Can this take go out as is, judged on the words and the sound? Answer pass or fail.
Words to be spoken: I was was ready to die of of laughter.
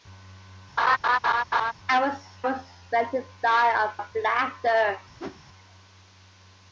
fail